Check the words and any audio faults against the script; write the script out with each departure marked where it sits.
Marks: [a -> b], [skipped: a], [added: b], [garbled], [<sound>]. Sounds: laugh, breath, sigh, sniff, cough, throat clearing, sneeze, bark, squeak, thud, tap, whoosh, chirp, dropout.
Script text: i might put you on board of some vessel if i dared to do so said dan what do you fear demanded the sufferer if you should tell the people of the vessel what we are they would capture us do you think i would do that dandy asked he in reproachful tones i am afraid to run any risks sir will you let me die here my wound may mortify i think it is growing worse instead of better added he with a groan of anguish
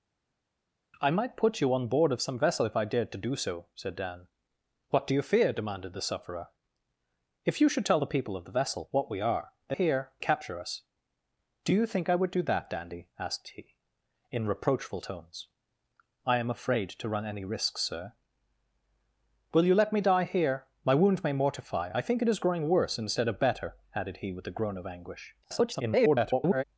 i might put you on board of some vessel if i dared to do so said dan what do you fear demanded the sufferer if you should tell the people of the vessel what we are they [would -> here] capture us do you think i would do that dandy asked he in reproachful tones i am afraid to run any risks sir will you let me die here my wound may mortify i think it is growing worse instead of better added he with a groan of anguish [garbled]